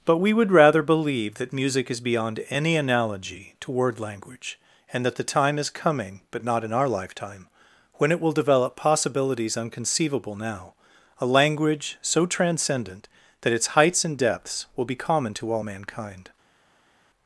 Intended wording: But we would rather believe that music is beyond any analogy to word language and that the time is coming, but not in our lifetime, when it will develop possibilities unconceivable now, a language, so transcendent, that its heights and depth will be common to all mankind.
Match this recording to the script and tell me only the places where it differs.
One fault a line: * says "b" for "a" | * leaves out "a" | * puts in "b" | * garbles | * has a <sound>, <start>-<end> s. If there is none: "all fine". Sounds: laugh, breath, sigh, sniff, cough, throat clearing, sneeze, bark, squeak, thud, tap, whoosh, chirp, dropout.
* says "depths" for "depth"